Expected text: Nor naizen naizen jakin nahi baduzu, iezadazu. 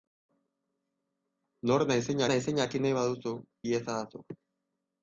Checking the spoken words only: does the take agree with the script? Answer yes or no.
yes